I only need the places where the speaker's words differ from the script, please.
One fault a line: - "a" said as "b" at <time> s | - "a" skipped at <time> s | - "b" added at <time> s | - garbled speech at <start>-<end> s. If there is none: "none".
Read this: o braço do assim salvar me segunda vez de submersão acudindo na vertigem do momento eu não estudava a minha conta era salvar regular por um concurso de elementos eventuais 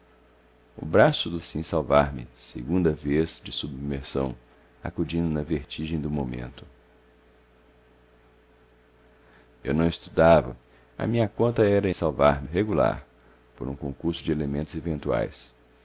none